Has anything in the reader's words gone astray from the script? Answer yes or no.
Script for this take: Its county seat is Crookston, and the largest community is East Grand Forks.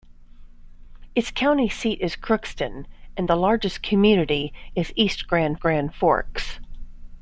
yes